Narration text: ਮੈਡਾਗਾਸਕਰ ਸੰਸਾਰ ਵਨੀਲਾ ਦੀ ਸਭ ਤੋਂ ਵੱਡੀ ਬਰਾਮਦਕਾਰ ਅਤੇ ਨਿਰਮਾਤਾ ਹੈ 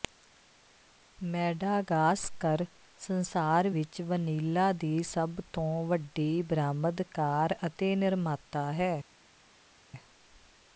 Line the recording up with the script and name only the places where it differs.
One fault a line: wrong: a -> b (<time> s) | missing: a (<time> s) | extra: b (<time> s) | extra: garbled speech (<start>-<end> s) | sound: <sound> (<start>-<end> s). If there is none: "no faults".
extra: ਵਿੱਚ (3.7 s)